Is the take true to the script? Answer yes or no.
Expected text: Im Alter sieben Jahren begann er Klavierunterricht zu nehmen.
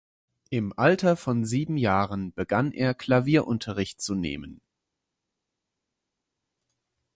no